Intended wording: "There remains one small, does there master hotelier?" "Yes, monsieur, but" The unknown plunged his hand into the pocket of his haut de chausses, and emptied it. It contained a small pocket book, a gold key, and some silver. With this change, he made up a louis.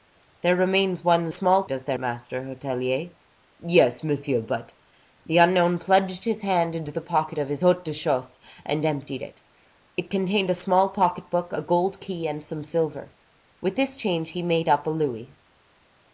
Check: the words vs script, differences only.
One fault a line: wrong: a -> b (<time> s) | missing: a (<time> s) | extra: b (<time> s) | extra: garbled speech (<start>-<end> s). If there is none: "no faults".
no faults